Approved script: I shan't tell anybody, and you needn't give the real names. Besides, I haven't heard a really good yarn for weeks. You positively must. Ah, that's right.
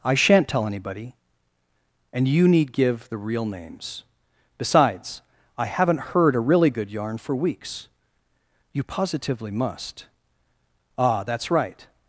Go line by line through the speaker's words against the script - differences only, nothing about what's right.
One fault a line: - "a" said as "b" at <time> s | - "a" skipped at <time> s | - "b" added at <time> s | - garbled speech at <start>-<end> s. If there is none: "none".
- "needn't" said as "need" at 2.5 s